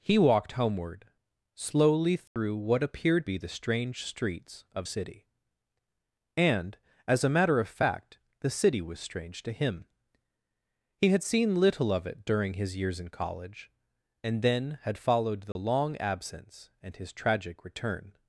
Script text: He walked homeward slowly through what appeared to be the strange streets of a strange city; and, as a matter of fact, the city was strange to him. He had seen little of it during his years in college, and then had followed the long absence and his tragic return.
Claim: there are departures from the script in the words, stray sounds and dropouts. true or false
true